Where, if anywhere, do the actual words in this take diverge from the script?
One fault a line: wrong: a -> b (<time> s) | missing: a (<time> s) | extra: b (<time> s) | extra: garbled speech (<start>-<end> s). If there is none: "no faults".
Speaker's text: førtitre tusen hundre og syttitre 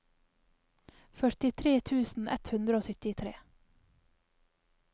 extra: ett (2.3 s)